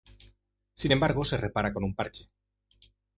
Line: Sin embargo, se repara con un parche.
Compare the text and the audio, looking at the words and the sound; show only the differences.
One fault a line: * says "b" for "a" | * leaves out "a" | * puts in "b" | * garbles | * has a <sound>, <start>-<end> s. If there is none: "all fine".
all fine